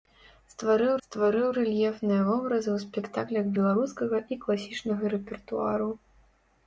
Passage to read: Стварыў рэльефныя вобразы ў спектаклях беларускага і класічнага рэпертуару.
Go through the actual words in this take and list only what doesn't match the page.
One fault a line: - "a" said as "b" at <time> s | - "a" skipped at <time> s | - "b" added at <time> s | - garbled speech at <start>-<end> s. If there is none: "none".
- "стварыў" added at 1.0 s